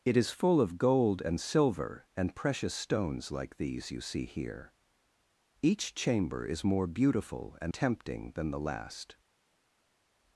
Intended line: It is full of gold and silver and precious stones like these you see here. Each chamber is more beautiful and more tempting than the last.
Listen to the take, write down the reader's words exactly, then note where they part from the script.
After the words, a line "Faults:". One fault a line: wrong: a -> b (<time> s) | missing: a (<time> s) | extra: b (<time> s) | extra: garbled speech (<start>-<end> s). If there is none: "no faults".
It is full of gold and silver and precious stones like these you see here. Each chamber is more beautiful and tempting than the last.
Faults:
missing: more (7.7 s)